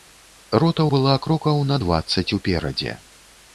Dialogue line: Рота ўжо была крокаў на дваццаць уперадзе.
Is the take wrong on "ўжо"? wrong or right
wrong